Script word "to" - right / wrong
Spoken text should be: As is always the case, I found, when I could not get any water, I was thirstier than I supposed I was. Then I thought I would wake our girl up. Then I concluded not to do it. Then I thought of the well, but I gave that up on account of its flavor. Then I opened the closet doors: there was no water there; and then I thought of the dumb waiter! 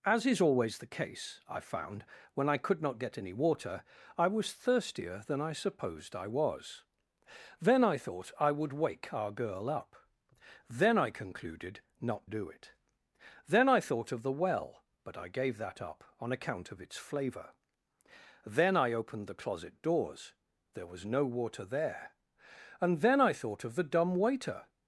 wrong